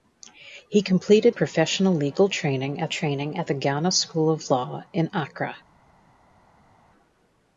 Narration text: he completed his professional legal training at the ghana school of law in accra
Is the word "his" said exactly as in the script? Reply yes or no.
no